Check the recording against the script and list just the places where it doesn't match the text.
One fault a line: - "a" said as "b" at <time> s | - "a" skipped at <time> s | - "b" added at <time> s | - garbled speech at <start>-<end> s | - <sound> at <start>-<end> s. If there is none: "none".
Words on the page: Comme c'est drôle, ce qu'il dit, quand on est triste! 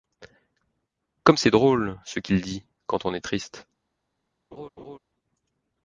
- laugh at 4.5-5.0 s